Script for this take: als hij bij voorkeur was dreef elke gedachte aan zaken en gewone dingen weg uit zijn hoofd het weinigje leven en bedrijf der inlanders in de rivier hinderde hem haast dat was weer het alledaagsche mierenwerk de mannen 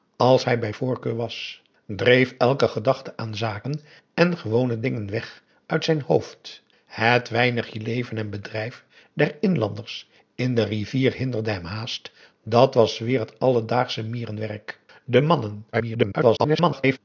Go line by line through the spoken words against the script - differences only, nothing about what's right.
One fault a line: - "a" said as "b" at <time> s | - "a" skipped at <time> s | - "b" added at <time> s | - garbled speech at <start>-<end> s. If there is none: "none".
- garbled speech at 15.7-17.0 s